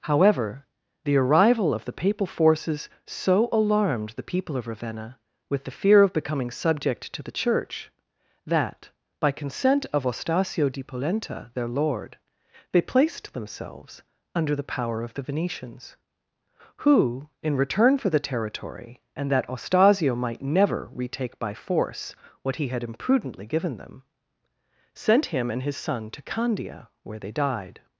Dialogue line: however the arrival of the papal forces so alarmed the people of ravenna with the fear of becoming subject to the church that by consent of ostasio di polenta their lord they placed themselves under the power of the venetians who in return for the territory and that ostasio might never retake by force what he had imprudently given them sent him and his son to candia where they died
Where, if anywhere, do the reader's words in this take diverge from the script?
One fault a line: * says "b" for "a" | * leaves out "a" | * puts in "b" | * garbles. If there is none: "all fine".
all fine